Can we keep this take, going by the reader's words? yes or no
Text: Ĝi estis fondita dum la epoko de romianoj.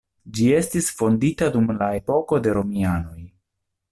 yes